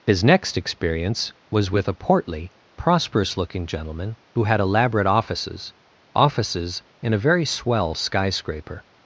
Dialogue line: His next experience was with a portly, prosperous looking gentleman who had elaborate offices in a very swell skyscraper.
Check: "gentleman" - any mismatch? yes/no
no